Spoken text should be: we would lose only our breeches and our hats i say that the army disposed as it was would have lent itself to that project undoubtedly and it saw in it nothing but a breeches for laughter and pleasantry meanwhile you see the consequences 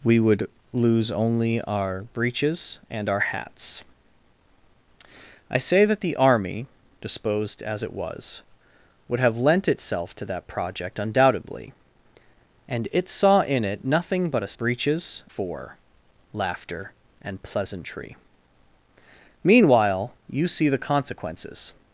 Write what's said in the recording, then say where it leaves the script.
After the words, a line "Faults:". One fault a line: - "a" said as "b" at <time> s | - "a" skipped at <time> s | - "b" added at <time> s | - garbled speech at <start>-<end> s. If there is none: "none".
we would lose only our breeches and our hats i say that the army disposed as it was would have lent itself to that project undoubtedly and it saw in it nothing but a breeches for laughter and pleasantry meanwhile you see the consequences
Faults:
none